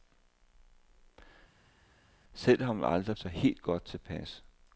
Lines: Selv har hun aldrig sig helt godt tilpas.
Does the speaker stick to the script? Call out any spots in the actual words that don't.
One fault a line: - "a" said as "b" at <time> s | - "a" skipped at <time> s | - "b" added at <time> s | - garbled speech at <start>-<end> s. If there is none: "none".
none